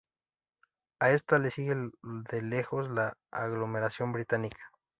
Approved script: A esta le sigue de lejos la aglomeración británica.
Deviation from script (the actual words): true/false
false